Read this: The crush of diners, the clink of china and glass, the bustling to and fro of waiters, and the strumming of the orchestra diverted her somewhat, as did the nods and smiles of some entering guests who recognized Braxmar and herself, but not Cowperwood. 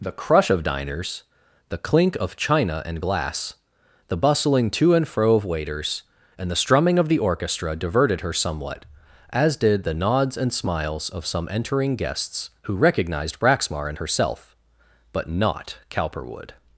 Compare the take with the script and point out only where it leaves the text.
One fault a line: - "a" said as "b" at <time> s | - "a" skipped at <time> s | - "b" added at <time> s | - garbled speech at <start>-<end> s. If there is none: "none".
none